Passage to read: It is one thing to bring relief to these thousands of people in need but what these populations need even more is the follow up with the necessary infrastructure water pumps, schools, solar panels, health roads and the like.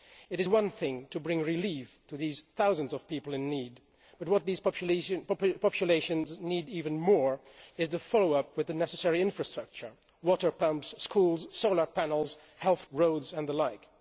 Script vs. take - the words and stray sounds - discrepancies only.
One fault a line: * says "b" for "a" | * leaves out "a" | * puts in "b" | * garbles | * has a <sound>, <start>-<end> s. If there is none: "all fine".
all fine